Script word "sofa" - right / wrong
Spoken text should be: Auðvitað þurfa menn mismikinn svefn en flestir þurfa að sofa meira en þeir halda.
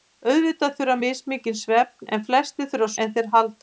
wrong